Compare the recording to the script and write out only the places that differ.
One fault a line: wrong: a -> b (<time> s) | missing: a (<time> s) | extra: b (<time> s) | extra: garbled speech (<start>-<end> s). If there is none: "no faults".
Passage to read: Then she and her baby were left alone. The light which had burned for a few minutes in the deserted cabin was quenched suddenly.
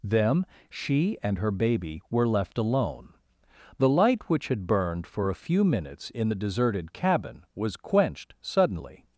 wrong: Then -> Them (0.0 s)